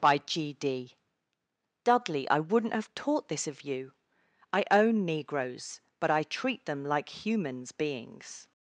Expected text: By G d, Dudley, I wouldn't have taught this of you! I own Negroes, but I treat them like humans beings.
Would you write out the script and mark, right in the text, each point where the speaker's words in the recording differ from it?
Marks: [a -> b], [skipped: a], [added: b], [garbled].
By G d, Dudley, I wouldn't have taught this of you! I own Negroes, but I treat them like humans beings.